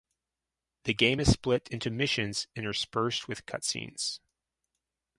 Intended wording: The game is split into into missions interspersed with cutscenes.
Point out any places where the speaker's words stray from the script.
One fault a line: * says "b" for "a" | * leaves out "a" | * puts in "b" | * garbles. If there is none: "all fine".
* leaves out "into"